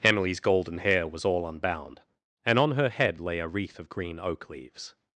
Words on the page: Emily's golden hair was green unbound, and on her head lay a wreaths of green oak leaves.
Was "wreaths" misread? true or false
true